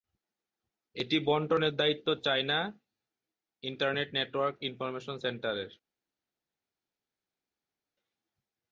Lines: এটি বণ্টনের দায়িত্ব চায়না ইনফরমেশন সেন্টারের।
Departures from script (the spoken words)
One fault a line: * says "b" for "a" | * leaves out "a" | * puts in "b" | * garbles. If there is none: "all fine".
* puts in "ইন্টারনেট নেটওয়ার্ক"